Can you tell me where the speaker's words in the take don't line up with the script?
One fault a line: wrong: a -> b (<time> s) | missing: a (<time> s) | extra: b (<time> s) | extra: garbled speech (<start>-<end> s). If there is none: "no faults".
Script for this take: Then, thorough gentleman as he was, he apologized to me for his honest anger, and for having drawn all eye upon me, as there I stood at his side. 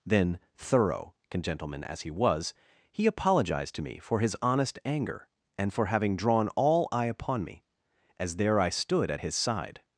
no faults